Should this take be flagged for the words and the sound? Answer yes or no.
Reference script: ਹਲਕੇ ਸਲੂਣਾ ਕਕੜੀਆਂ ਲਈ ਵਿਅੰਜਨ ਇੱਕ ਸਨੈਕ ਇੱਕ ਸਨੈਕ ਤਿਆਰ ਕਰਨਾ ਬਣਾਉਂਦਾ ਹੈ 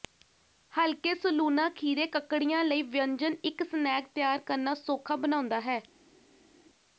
yes